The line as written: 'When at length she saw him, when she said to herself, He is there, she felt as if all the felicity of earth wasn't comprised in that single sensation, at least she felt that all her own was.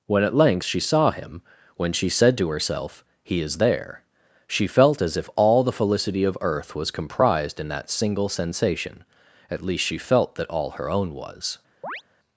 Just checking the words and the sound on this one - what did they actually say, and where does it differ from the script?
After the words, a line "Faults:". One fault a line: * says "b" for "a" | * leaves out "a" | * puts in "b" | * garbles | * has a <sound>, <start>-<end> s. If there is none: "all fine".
'When at length she saw him, when she said to herself, He is there, she felt as if all the felicity of earth was comprised in that single sensation, at least she felt that all her own was.
Faults:
* says "was" for "wasn't"
* has a chirp, 11.8-12.0 s